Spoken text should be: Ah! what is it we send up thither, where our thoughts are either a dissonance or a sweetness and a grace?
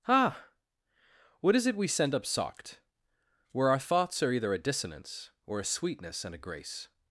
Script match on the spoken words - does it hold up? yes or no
no